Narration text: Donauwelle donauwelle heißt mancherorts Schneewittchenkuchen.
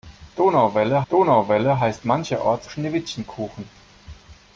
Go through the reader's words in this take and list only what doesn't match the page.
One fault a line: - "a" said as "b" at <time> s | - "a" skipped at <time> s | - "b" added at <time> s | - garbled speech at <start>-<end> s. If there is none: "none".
none